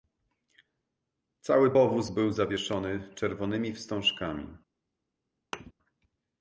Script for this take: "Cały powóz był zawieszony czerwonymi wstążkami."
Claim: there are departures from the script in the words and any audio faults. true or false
true